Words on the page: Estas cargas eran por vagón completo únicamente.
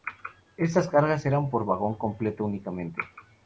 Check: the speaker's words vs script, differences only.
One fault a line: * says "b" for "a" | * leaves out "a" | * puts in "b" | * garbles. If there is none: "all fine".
all fine